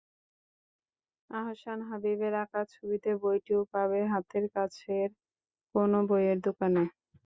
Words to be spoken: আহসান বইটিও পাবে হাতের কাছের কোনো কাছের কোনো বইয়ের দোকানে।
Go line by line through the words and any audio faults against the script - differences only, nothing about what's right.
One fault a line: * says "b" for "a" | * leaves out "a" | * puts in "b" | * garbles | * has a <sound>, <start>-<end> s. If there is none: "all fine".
* puts in "হাবীবের আঁকা ছবিতে"
* leaves out "কাছের কোনো"